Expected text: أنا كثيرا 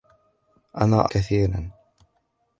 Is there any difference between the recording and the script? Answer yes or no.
no